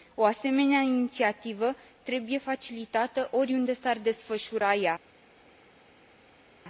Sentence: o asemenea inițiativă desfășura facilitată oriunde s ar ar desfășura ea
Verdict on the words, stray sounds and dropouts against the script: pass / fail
fail